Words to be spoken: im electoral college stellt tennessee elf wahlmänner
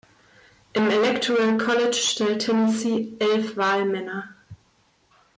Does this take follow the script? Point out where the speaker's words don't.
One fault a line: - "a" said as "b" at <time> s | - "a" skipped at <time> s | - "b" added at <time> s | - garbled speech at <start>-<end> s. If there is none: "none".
none